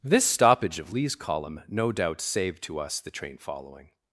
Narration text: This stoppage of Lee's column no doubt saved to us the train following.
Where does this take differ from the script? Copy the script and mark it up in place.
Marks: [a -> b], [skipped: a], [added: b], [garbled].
This stoppage of Lee's column no doubt saved to us the train following.